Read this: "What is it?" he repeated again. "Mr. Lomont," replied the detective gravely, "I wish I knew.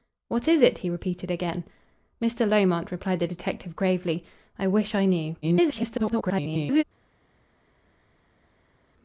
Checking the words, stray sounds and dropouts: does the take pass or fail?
fail